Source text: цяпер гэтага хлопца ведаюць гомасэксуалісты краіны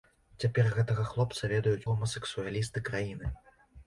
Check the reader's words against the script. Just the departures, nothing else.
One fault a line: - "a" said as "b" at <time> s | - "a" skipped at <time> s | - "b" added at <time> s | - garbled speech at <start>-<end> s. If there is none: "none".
none